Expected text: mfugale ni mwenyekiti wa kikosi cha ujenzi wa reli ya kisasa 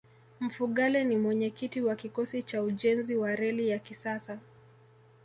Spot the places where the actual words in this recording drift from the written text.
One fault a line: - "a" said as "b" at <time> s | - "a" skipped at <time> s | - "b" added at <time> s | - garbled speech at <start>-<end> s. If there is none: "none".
none